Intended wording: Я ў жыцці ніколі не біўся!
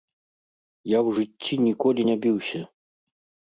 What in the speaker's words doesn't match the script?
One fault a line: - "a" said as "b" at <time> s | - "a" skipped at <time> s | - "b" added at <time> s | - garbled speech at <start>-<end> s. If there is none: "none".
none